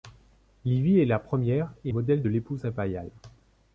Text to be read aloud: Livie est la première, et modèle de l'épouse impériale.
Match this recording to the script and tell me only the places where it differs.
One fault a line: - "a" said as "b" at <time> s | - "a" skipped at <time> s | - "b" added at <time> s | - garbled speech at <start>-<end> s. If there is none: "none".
none